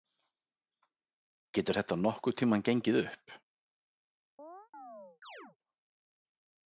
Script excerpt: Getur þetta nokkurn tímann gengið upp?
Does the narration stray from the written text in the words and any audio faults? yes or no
yes